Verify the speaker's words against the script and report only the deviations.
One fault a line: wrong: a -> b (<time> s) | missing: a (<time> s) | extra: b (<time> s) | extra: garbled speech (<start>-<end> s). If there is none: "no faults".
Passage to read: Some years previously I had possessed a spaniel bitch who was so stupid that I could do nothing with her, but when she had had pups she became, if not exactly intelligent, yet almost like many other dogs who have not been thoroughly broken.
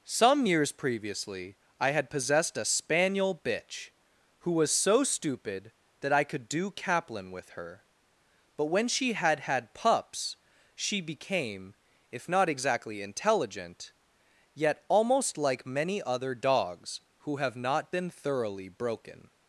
wrong: nothing -> kaplan (6.7 s)